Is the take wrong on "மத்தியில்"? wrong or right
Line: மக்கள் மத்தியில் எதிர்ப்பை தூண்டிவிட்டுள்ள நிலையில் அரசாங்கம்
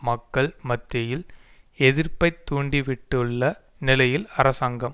right